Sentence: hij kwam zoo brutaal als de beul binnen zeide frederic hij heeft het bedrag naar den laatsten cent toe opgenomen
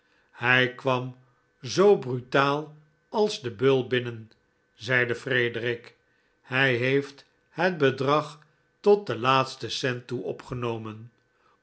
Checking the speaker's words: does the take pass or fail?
fail